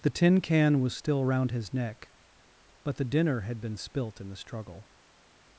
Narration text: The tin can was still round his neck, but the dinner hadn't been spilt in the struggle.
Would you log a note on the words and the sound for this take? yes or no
yes